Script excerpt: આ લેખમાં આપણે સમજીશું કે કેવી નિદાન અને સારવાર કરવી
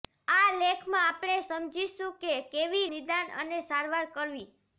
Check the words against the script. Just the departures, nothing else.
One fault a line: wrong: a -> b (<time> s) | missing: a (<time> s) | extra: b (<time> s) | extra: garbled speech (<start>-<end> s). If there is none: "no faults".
no faults